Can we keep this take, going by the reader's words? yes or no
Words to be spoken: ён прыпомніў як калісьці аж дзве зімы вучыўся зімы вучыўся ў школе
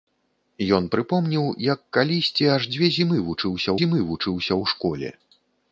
yes